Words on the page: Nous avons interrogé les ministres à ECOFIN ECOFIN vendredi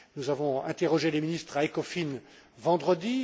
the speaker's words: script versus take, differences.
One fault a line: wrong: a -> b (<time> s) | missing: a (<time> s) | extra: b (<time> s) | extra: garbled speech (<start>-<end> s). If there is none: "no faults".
missing: ECOFIN (2.2 s)